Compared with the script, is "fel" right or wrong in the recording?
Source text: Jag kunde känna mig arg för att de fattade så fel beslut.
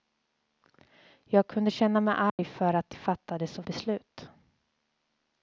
wrong